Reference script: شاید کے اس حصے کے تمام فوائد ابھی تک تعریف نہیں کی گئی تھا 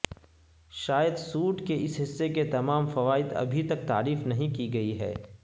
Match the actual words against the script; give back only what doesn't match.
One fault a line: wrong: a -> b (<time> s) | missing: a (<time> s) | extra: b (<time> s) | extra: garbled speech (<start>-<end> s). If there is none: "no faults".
extra: سوٹ (1.1 s)
wrong: تھا -> ہے (5.0 s)